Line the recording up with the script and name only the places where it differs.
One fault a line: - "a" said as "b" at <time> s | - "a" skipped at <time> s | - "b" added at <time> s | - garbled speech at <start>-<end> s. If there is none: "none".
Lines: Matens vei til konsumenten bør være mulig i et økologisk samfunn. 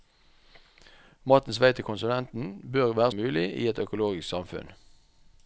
none